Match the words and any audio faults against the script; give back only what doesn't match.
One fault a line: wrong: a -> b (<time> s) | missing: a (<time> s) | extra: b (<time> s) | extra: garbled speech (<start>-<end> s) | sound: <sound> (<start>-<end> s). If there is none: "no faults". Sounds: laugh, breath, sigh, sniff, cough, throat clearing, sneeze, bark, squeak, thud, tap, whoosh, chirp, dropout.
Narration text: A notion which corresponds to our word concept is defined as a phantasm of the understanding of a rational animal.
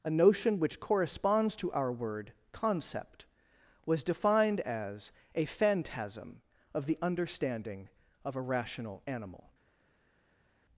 wrong: is -> was (3.9 s)